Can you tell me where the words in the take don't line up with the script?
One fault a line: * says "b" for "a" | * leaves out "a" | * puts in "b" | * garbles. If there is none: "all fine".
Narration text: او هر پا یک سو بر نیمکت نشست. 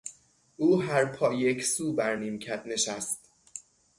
all fine